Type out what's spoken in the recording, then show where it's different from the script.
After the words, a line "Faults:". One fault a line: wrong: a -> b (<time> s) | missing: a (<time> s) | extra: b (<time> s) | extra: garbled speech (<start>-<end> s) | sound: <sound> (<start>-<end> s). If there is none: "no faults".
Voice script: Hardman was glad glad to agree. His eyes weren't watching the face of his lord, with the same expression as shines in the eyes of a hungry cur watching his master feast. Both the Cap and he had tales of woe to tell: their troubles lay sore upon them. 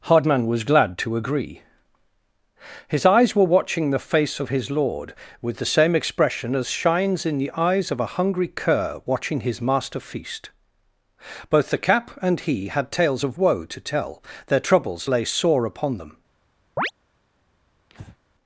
Hardman was glad to agree. His eyes were watching the face of his lord, with the same expression as shines in the eyes of a hungry cur watching his master feast. Both the Cap and he had tales of woe to tell: their troubles lay sore upon them.
Faults:
missing: glad (1.0 s)
wrong: weren't -> were (3.4 s)
sound: chirp (16.8-16.9 s)
sound: breath (17.9-18.2 s)